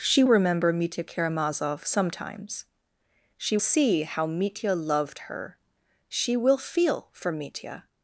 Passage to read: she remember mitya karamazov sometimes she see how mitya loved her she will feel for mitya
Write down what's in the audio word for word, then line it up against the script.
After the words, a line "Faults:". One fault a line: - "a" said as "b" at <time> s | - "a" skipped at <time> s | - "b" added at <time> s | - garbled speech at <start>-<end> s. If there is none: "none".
she remember mitya karamazov sometimes she see how mitya loved her she will feel for mitya
Faults:
none